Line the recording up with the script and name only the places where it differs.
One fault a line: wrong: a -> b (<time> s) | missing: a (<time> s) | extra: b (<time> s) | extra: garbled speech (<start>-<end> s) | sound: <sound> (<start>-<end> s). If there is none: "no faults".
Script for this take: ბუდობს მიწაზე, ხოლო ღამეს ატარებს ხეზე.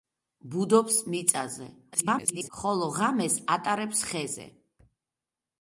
extra: garbled speech (1.9-2.5 s)